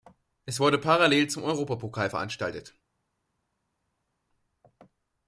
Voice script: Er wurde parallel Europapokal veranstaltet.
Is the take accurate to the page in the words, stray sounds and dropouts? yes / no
no